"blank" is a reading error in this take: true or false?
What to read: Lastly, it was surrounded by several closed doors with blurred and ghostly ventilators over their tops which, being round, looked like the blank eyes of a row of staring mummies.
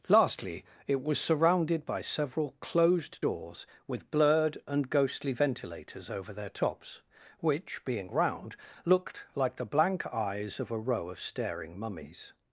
false